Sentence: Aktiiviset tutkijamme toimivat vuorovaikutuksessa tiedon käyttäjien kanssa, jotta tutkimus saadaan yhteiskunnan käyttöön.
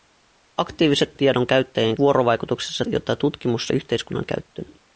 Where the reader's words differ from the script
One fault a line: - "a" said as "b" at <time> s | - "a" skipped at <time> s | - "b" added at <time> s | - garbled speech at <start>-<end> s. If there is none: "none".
- "tutkijamme toimivat vuorovaikutuksessa" skipped at 1.1 s
- "kanssa" said as "vuorovaikutuksessa" at 2.0 s
- "saadaan" skipped at 3.7 s